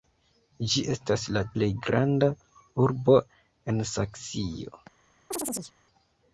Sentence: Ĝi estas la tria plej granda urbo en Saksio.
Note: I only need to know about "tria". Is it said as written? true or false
false